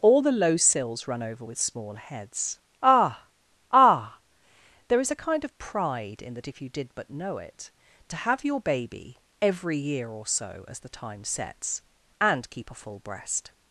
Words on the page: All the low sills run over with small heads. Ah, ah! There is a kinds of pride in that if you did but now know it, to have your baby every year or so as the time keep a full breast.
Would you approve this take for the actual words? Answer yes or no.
no